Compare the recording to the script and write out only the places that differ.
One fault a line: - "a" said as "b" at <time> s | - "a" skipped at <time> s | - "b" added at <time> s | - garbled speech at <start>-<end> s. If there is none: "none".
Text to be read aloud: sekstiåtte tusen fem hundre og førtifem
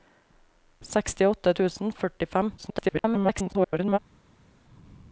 - "fem hundre" skipped at 1.9 s
- garbled speech at 2.6-4.0 s